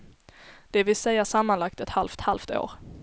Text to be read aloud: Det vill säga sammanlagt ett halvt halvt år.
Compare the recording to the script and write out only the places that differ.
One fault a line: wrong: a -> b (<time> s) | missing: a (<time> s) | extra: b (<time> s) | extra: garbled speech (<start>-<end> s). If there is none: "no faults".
no faults